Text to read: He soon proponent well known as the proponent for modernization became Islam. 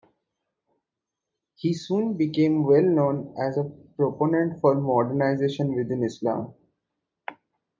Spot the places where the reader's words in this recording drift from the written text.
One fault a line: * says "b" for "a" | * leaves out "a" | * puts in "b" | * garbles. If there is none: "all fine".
* says "became" for "proponent"
* says "a" for "the"
* says "within" for "became"